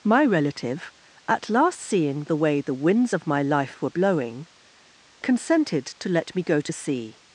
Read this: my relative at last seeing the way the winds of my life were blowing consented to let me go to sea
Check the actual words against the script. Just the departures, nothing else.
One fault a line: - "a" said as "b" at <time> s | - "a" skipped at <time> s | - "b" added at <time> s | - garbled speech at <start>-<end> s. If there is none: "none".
none